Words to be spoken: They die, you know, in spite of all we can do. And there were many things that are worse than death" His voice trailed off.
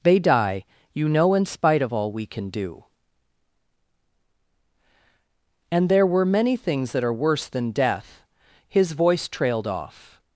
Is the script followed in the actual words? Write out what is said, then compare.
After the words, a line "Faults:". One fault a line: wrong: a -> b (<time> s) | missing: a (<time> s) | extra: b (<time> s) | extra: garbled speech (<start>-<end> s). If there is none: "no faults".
They die, you know, in spite of all we can do. And there were many things that are worse than death" His voice trailed off.
Faults:
no faults